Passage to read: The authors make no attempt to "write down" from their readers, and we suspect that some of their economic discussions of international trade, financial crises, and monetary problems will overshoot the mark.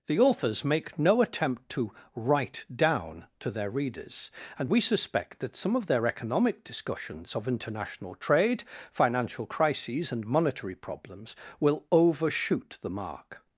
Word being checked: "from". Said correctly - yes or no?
no